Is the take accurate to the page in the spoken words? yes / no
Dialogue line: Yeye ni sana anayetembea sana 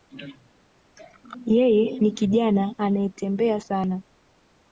no